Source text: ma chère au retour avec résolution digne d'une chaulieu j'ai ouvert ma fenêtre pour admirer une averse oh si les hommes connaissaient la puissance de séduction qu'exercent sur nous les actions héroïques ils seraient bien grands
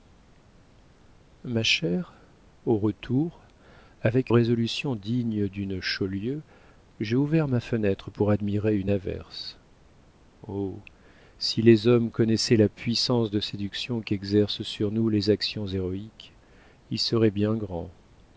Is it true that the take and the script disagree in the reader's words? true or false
false